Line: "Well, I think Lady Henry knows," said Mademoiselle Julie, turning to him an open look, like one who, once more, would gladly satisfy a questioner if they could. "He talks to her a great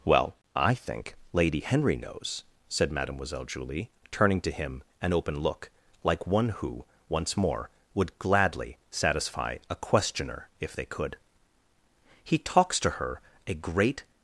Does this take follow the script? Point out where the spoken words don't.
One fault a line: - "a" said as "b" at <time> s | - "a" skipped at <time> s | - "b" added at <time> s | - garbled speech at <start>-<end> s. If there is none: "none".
none